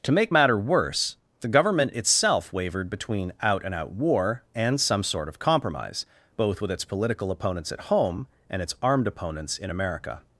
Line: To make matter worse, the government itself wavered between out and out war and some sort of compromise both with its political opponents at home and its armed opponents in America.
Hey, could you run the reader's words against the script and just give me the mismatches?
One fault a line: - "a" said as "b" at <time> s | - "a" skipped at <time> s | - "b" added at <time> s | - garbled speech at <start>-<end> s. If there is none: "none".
none